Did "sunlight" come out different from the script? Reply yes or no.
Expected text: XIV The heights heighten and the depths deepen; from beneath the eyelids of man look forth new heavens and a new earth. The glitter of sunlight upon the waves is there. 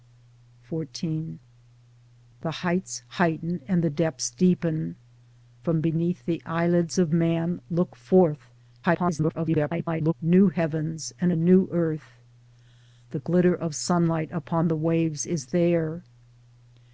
no